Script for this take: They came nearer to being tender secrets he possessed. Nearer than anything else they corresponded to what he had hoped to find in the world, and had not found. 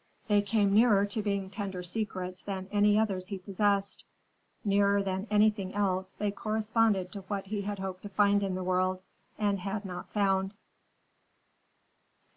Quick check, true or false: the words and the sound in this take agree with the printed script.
false